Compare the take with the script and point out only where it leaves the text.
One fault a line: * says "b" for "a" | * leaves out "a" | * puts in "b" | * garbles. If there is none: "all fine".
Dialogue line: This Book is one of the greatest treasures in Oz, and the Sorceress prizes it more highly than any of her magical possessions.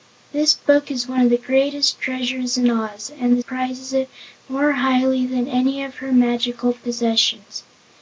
* leaves out "Sorceress"